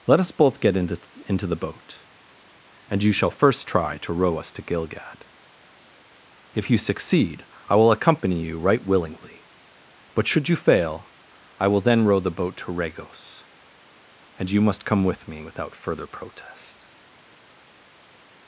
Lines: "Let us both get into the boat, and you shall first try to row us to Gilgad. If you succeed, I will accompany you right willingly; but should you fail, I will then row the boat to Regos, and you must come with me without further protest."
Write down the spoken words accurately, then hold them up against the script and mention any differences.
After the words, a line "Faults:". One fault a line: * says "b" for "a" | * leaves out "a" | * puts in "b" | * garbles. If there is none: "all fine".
"Let us both get into into the boat, and you shall first try to row us to Gilgad. If you succeed, I will accompany you right willingly; but should you fail, I will then row the boat to Regos, and you must come with me without further protest."
Faults:
* puts in "into"